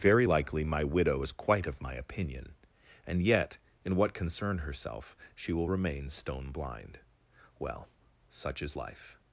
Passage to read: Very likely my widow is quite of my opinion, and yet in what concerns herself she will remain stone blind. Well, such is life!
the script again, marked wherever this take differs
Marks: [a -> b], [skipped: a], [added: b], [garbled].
Very likely my widow is quite of my opinion, and yet in what [concerns -> concern] herself she will remain stone blind. Well, such is life!